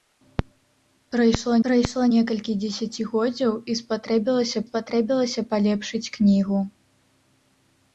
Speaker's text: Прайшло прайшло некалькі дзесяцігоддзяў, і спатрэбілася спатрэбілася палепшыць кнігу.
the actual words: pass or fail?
pass